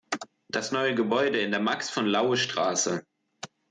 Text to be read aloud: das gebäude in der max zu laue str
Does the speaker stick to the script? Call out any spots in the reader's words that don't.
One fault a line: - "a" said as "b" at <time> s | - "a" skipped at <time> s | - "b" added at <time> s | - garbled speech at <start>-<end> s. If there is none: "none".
- "neue" added at 0.7 s
- "zu" said as "von" at 1.9 s